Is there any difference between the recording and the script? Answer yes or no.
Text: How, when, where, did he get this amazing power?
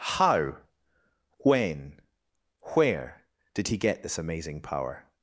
no